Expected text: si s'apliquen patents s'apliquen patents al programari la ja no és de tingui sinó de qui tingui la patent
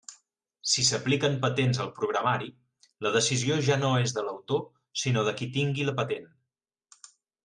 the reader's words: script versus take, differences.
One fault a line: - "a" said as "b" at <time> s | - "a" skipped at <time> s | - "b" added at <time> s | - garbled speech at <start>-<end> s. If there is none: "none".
- "s'apliquen patents" skipped at 1.8 s
- "decisió" added at 3.2 s
- "tingui" said as "l'autor" at 4.3 s